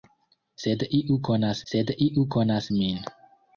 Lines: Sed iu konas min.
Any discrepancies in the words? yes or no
yes